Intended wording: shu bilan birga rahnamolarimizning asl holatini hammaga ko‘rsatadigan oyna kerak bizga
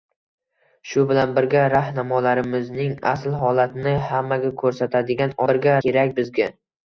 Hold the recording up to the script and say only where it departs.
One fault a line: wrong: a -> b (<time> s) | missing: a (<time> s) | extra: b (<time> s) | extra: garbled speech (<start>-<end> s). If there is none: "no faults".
wrong: oyna -> birga (5.5 s)